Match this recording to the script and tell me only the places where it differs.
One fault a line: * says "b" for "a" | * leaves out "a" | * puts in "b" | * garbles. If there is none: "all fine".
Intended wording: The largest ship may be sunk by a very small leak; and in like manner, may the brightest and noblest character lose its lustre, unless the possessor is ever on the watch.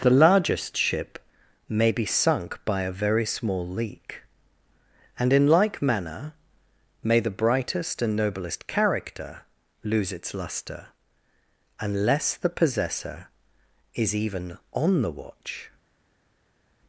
* says "even" for "ever"